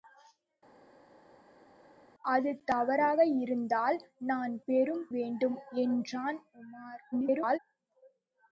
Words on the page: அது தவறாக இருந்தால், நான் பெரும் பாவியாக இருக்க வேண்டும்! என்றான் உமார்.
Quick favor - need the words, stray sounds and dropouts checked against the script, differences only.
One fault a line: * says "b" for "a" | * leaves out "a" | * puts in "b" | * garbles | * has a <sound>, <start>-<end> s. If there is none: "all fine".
* leaves out "பாவியாக இருக்க"
* garbles